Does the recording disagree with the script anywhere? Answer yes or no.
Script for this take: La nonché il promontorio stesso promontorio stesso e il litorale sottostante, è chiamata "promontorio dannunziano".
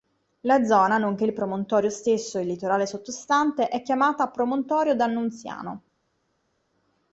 yes